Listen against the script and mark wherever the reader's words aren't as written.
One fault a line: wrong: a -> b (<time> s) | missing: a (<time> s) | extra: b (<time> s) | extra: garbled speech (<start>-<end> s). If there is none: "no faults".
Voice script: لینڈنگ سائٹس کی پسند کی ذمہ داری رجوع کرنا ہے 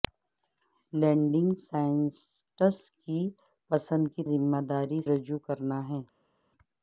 no faults